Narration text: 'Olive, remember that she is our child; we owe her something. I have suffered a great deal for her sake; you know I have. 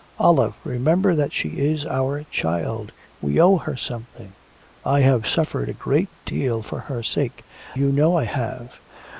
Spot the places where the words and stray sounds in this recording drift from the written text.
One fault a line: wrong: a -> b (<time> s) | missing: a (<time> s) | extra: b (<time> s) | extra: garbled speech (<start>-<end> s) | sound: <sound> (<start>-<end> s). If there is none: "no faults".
no faults